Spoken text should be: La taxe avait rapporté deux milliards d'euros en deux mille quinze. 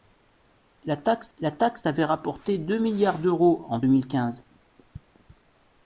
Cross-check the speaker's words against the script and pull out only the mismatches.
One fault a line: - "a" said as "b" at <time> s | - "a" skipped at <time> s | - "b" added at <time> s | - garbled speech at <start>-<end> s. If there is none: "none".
- "la taxe" added at 1.4 s
- "deux" skipped at 3.8 s